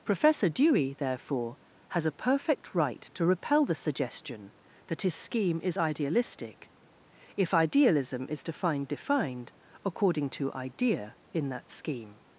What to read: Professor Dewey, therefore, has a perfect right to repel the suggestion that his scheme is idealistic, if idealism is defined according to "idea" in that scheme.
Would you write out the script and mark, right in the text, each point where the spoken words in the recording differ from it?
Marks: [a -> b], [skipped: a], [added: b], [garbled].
Professor Dewey, therefore, has a perfect right to repel the suggestion that his scheme is idealistic, if idealism is defined [added: defined] according to "idea" in that scheme.